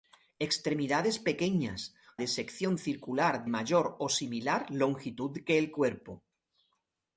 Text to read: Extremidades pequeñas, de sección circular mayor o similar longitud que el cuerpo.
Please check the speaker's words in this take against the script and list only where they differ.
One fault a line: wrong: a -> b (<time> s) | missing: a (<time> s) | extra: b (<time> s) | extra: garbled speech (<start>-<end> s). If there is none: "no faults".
no faults